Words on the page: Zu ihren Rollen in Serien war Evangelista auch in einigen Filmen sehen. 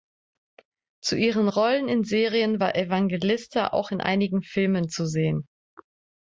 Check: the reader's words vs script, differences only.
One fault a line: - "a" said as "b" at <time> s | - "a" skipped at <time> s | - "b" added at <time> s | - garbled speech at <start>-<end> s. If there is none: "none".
- "zu" added at 4.9 s